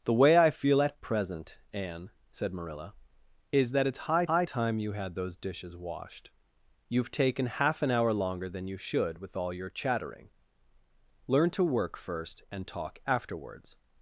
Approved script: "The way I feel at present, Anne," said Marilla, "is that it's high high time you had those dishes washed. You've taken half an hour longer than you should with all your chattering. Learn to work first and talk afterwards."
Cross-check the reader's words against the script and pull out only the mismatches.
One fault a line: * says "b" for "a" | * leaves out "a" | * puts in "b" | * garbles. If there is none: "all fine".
all fine